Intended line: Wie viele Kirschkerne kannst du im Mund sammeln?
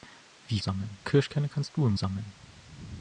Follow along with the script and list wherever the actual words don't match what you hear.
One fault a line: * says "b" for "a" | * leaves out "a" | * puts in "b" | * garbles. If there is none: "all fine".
* says "sammeln" for "viele"
* leaves out "Mund"